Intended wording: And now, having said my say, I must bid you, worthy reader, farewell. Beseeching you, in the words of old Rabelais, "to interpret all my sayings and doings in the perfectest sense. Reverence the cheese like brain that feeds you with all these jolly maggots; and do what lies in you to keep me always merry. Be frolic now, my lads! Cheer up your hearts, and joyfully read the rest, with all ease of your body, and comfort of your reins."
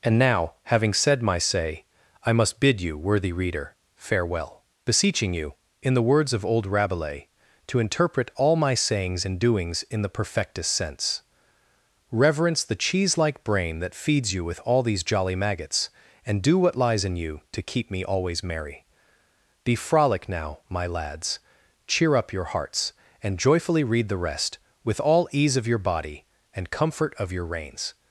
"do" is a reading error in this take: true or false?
false